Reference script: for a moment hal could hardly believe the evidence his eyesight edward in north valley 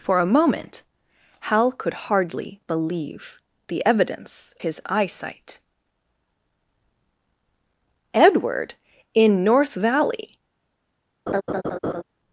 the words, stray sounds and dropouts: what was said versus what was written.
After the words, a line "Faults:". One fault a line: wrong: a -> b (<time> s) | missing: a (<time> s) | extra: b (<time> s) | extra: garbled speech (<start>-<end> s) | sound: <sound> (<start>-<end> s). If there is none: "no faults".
for a moment hal could hardly believe the evidence his eyesight edward in north valley
Faults:
sound: laugh (11.3-12.0 s)